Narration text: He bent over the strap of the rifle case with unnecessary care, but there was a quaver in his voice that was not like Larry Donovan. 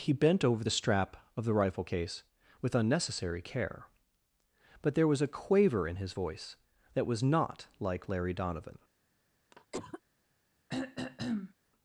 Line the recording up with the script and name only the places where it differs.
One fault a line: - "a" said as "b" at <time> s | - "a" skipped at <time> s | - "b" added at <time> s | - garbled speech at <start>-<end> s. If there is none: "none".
none